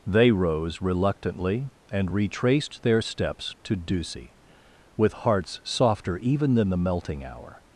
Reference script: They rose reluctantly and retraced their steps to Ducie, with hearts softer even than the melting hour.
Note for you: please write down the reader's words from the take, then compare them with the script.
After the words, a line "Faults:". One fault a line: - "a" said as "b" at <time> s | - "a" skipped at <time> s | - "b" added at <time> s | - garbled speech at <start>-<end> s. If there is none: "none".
They rose reluctantly and retraced their steps to Ducie, with hearts softer even than the melting hour.
Faults:
none